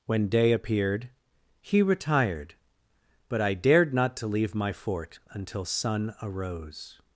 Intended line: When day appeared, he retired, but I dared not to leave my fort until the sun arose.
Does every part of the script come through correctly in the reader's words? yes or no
no